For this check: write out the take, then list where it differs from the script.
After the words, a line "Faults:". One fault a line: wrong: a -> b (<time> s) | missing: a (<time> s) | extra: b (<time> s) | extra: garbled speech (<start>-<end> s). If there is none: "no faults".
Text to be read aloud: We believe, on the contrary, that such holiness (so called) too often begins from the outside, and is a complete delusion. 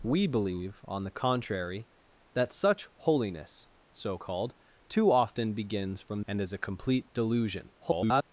We believe, on the contrary, that such holiness (so called) too often begins from and is a complete delusion. [garbled]
Faults:
missing: the outside (6.2 s)
extra: garbled speech (7.8-8.2 s)